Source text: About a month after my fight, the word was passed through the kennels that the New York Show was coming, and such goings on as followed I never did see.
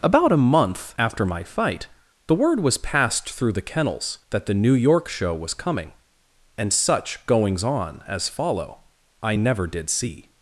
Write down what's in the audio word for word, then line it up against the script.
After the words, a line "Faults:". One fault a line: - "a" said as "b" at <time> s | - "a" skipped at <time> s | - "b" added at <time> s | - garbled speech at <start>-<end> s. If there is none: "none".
About a month after my fight, the word was passed through the kennels that the New York Show was coming, and such goings on as follow I never did see.
Faults:
- "followed" said as "follow" at 8.3 s